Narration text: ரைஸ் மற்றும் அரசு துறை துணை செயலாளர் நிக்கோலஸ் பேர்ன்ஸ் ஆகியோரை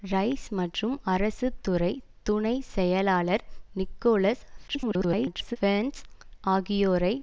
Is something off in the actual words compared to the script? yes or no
yes